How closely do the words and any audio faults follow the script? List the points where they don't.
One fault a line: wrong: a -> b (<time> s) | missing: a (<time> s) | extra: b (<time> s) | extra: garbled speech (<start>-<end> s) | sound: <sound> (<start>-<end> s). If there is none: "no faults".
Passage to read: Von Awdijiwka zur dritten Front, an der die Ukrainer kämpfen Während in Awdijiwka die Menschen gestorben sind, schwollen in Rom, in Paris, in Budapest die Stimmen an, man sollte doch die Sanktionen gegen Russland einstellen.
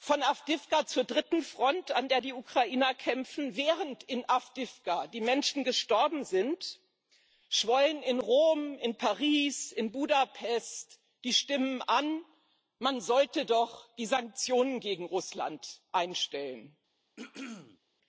sound: throat clearing (17.2-17.8 s)